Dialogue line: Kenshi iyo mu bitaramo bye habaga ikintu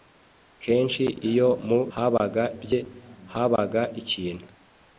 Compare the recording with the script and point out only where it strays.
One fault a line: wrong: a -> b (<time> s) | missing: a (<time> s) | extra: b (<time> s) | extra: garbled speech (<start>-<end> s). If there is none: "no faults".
wrong: bitaramo -> habaga (1.9 s)